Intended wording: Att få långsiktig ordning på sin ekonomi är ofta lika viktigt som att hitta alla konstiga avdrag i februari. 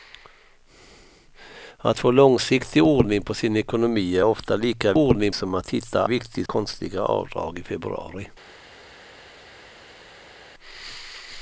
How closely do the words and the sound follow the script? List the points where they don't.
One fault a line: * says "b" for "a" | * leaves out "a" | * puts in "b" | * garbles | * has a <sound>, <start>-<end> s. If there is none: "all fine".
* says "ordning" for "viktigt"
* says "viktigt" for "alla"